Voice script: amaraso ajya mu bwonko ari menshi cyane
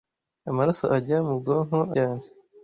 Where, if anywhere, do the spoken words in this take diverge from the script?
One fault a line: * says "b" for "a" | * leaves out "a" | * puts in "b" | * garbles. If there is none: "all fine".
* leaves out "ari menshi"